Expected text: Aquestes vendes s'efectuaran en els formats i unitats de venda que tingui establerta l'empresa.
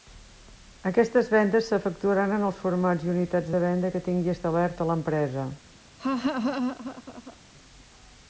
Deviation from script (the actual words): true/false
false